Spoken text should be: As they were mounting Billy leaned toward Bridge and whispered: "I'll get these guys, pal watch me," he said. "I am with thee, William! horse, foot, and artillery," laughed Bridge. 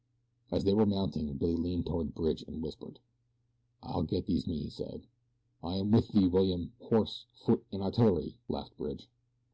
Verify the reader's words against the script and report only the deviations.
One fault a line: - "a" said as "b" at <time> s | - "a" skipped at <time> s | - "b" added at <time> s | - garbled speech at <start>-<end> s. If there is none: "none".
- "guys pal watch" skipped at 4.4 s